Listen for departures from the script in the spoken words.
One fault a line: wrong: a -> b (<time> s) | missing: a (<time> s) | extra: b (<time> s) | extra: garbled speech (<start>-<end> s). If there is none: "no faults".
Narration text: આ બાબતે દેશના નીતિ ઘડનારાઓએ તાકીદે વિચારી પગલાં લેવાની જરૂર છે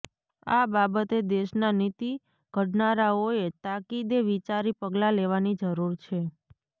no faults